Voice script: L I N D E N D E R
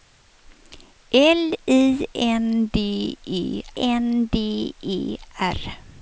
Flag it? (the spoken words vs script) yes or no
no